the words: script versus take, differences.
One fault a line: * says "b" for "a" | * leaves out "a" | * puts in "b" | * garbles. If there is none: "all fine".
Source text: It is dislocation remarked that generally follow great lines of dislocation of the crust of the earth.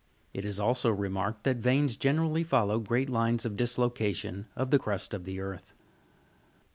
* says "also" for "dislocation"
* puts in "veins"